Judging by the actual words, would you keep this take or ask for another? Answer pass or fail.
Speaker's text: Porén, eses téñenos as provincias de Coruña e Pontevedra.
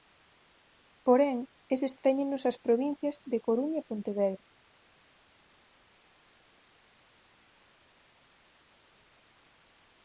pass